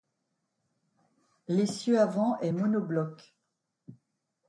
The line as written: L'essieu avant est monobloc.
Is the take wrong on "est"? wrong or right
right